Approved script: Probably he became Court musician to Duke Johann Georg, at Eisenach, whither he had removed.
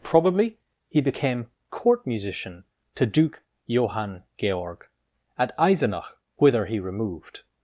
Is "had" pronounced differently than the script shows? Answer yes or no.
yes